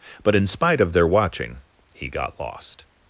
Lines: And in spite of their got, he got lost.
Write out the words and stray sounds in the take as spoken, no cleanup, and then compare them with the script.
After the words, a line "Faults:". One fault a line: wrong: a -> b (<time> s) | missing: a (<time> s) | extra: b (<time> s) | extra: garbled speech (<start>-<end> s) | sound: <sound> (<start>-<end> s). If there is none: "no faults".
But in spite of their watching, he got lost.
Faults:
wrong: And -> But (0.2 s)
wrong: got -> watching (1.1 s)